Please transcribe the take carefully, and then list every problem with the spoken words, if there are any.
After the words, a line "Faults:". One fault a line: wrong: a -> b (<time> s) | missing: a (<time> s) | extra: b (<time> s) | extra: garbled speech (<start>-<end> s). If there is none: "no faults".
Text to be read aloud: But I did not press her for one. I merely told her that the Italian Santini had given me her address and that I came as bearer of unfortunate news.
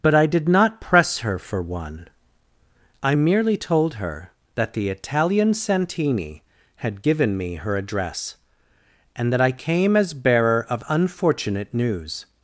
But I did not press her for one. I merely told her that the Italian Santini had given me her address and that I came as bearer of unfortunate news.
Faults:
no faults